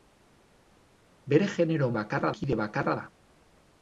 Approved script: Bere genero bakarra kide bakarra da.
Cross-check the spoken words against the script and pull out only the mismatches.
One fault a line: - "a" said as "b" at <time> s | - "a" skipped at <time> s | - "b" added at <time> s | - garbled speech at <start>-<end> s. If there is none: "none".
none